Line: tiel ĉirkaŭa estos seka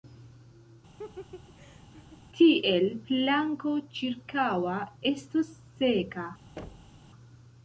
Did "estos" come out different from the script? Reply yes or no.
no